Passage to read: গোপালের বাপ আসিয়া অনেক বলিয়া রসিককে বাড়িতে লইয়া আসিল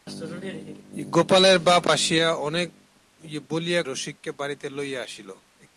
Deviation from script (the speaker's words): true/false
false